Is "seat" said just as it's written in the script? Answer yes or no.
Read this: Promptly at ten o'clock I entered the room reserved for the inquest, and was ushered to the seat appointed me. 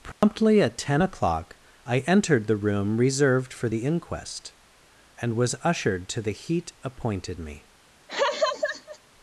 no